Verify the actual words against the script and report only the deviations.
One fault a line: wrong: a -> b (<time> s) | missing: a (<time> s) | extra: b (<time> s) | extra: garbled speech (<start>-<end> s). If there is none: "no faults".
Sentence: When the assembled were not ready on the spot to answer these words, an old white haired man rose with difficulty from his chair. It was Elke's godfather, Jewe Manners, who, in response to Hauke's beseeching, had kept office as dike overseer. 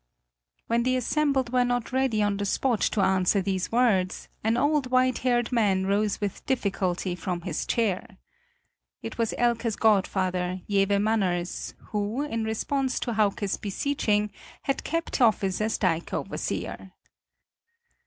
no faults